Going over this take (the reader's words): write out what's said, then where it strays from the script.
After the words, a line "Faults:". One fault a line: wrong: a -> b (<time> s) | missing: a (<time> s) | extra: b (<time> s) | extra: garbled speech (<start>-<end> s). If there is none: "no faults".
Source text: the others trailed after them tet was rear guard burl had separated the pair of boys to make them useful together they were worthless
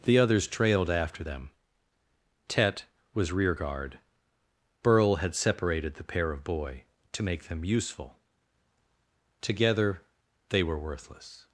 the others trailed after them tet was rear guard burl had separated the pair of boy to make them useful together they were worthless
Faults:
wrong: boys -> boy (6.4 s)